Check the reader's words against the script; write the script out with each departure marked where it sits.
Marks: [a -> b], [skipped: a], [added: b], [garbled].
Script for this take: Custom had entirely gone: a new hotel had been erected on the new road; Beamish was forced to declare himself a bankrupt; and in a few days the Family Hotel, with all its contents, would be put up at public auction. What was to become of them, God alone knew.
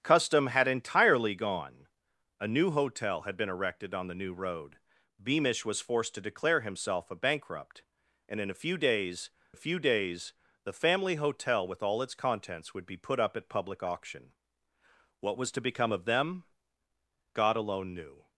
Custom had entirely gone: a new hotel had been erected on the new road; Beamish was forced to declare himself a bankrupt; and in a few days [added: a few days] the Family Hotel, with all its contents, would be put up at public auction. What was to become of them, God alone knew.